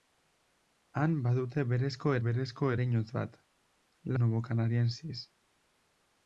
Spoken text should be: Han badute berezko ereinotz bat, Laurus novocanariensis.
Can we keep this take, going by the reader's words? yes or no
no